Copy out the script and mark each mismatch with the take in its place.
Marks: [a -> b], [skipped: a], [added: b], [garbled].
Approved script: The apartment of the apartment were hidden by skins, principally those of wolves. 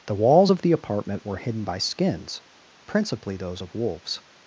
The [apartment -> walls] of the apartment were hidden by skins, principally those of wolves.